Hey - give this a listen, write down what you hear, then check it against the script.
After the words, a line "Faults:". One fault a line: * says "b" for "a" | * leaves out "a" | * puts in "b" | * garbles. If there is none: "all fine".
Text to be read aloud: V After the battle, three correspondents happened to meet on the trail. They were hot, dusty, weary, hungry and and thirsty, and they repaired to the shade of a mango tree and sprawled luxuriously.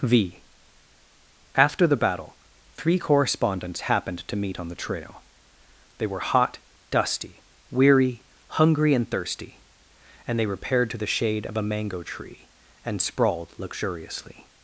V After the battle, three correspondents happened to meet on the trail. They were hot, dusty, weary, hungry and thirsty, and they repaired to the shade of a mango tree and sprawled luxuriously.
Faults:
* leaves out "and"